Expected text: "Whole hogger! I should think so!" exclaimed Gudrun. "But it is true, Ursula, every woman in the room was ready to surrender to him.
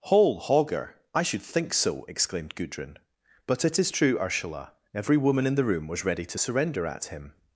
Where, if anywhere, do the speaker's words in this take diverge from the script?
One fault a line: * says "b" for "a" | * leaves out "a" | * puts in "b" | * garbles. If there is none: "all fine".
* says "at" for "to"